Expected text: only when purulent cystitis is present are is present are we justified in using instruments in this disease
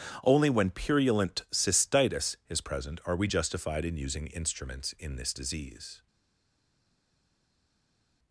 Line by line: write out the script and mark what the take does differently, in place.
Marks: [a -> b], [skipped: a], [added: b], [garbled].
only when purulent cystitis is present are [skipped: is present are] we justified in using instruments in this disease